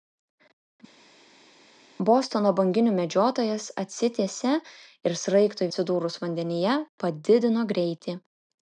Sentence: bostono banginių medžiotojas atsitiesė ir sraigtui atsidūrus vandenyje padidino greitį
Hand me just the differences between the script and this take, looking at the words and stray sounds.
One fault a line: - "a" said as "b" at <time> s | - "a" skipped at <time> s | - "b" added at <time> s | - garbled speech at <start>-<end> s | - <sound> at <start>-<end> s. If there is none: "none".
none